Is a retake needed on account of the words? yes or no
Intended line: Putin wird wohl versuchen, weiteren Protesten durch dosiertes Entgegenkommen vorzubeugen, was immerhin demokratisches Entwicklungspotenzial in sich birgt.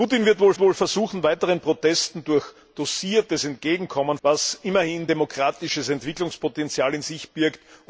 yes